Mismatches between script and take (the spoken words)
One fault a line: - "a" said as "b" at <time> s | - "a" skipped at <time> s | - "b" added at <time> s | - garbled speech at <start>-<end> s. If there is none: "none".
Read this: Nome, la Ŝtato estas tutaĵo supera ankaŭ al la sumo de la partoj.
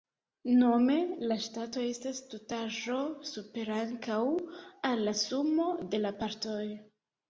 none